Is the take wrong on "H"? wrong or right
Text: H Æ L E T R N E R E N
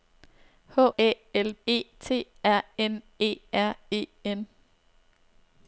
right